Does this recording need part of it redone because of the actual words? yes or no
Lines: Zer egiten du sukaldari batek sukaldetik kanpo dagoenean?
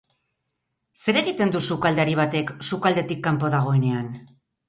no